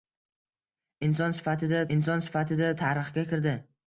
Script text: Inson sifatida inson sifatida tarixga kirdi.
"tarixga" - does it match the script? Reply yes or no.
yes